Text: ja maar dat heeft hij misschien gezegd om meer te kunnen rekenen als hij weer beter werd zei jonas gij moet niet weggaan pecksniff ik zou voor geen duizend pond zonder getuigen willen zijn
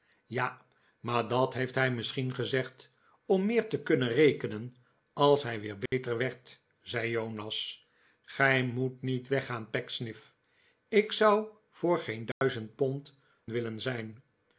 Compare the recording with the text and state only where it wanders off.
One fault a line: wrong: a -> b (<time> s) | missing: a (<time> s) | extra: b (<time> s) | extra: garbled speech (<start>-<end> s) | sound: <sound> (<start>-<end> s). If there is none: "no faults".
sound: dropout (5.9-5.9 s)
sound: dropout (12.3-12.4 s)
missing: zonder getuigen (13.2 s)